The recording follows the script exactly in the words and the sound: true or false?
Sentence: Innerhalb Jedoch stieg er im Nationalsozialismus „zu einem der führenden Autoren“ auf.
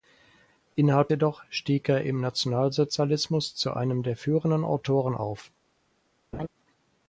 false